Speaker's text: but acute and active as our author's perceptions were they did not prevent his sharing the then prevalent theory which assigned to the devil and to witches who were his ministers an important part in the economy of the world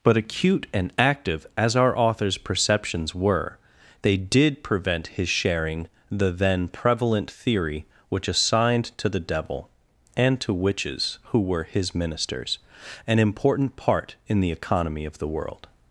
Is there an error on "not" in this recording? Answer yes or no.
yes